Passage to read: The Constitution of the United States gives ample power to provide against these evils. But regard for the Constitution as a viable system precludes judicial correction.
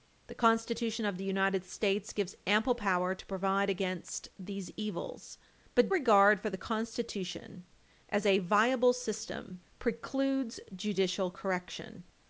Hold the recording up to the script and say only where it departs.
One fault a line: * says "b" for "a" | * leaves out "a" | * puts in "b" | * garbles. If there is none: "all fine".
all fine